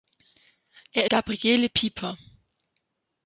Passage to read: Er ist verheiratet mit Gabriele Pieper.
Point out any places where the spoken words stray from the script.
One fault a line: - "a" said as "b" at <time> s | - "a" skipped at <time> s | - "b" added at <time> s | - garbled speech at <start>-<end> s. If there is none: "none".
- "ist verheiratet mit" skipped at 1.1 s